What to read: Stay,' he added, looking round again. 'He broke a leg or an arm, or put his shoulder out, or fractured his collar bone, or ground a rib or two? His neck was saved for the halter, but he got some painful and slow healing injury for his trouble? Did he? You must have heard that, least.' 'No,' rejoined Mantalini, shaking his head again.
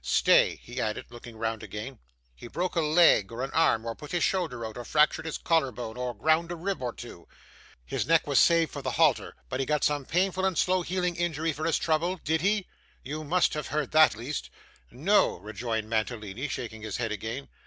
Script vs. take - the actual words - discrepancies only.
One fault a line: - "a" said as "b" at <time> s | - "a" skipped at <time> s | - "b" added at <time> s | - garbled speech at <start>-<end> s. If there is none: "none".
none